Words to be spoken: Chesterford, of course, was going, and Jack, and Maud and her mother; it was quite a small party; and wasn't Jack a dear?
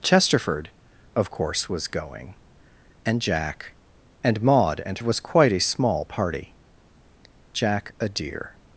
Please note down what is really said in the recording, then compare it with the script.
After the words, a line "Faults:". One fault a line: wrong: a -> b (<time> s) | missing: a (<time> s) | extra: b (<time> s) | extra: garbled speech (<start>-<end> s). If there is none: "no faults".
Chesterford, of course, was going, and Jack, and Maud and was quite a small party; Jack a dear?
Faults:
missing: her mother it (5.0 s)
missing: and wasn't (6.6 s)